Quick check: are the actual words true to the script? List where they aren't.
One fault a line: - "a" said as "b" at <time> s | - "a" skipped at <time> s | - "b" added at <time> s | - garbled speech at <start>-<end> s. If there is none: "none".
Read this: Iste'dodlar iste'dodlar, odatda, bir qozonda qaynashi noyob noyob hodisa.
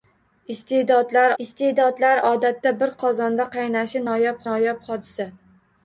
none